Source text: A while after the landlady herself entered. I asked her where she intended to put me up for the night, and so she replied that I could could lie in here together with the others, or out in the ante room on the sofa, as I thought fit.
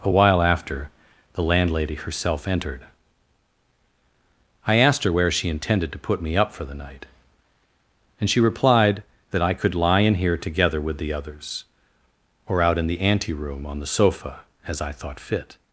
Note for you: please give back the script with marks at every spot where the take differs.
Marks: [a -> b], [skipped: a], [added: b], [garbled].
A while after the landlady herself entered. I asked her where she intended to put me up for the night, and [skipped: so] she replied that I could [skipped: could] lie in here together with the others, or out in the ante room on the sofa, as I thought fit.